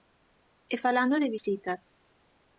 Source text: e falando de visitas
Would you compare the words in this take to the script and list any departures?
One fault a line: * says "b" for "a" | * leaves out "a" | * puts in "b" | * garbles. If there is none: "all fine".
all fine